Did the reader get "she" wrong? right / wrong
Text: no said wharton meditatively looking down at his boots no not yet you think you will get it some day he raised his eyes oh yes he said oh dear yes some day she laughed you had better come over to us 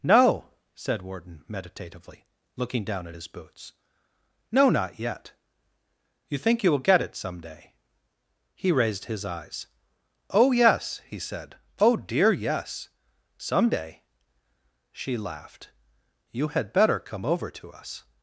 right